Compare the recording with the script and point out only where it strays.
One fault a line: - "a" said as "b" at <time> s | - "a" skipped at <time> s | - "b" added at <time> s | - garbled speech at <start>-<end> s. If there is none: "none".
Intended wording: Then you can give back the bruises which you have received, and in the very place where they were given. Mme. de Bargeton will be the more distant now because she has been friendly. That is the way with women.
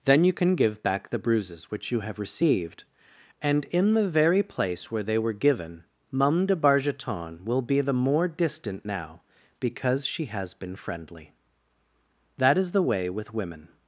- "Mme" said as "Mum" at 6.1 s